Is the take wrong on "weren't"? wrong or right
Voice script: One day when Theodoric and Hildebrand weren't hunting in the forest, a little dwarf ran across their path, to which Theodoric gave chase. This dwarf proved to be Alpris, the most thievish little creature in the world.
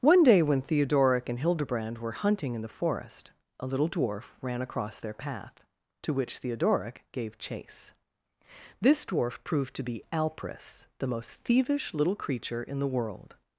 wrong